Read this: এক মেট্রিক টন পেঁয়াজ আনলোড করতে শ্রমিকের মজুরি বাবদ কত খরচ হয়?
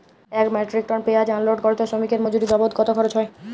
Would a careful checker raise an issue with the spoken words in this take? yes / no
no